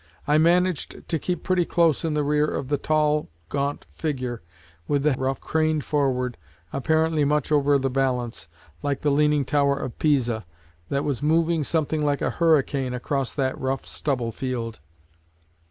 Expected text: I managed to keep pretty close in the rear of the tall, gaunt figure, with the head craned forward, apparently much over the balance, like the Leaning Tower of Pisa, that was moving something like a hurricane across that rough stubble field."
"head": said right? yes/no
no